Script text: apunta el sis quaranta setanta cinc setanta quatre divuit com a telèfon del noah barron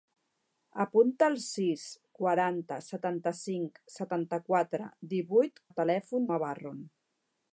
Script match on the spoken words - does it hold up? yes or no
no